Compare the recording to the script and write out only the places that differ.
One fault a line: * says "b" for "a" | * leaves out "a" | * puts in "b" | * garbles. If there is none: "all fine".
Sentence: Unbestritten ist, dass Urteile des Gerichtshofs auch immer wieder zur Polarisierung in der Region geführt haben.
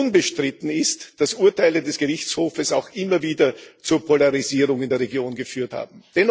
all fine